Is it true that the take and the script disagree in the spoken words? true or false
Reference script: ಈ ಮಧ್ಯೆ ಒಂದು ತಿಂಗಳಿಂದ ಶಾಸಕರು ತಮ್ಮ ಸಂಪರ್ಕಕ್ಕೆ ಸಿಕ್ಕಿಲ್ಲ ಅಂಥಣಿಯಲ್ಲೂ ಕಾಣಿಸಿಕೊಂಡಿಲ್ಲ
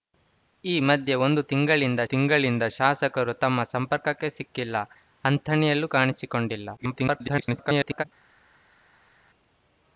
true